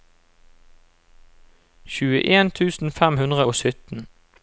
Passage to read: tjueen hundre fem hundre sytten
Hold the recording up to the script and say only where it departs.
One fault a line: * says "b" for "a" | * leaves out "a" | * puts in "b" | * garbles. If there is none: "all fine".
* says "tusen" for "hundre"
* puts in "og"